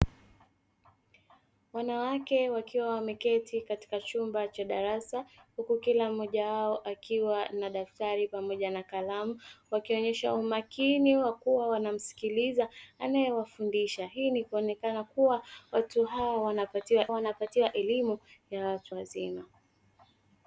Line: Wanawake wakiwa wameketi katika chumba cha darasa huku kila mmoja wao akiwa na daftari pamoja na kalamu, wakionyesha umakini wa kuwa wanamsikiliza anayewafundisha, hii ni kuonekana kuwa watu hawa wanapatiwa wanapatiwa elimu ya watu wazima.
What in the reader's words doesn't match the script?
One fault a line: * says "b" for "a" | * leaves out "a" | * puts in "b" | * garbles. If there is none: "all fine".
all fine